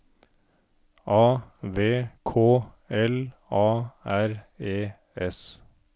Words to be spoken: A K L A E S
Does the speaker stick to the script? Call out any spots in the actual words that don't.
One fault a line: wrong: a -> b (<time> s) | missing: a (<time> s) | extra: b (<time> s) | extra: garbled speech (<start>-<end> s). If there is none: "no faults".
extra: V (1.6 s)
extra: R (4.0 s)